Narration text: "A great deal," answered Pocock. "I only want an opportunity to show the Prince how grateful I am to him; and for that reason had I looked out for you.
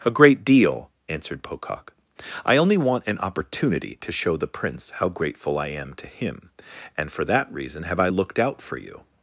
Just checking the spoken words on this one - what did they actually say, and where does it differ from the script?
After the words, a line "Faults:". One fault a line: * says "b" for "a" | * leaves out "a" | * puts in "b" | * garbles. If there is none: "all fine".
"A great deal," answered Pocock. "I only want an opportunity to show the Prince how grateful I am to him; and for that reason have I looked out for you.
Faults:
* says "have" for "had"